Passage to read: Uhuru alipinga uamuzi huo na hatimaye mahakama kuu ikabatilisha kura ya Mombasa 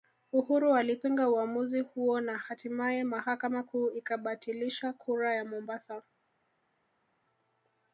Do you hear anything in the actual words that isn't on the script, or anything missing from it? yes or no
no